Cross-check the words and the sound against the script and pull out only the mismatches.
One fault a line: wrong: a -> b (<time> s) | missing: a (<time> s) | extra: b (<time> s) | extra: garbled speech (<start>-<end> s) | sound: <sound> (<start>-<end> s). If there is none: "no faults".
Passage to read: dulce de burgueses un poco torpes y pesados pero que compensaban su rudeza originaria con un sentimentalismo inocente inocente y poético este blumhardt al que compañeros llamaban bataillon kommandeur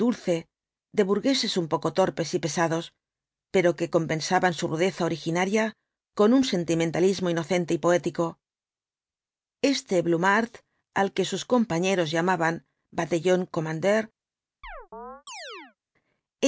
missing: inocente (7.7 s)
extra: sus (11.3 s)
sound: chirp (14.6-15.8 s)